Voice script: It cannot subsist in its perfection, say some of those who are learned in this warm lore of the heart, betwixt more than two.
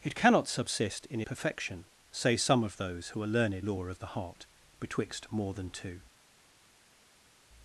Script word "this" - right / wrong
wrong